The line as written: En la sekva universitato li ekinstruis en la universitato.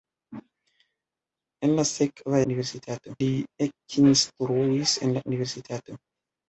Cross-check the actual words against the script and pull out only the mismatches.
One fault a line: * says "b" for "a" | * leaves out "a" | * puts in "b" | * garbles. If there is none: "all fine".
all fine